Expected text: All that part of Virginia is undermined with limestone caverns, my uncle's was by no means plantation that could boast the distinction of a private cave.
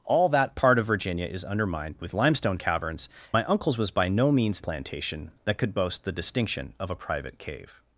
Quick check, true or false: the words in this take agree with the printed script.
true